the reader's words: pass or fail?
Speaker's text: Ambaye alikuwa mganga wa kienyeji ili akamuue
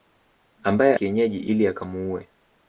fail